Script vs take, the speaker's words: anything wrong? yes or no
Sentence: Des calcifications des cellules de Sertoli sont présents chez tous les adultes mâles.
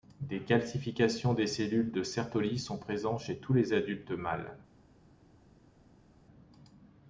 no